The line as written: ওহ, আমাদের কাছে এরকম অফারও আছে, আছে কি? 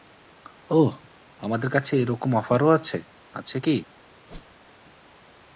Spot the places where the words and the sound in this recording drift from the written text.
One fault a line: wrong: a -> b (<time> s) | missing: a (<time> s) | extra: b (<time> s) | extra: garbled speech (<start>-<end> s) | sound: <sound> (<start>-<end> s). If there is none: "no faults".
sound: whoosh (4.3-4.7 s)